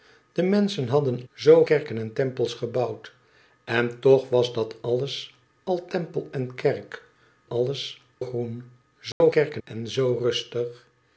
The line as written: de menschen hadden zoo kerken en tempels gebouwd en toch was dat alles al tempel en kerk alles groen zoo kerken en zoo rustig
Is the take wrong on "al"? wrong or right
right